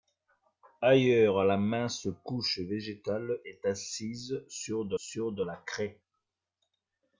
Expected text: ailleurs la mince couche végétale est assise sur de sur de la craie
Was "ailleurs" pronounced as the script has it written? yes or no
yes